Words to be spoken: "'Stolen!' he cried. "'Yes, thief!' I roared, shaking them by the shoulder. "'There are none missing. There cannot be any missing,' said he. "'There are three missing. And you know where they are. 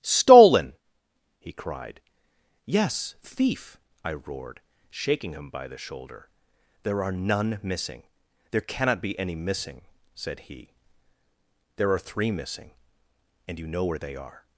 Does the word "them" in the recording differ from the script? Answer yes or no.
yes